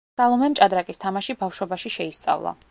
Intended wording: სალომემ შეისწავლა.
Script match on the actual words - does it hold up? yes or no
no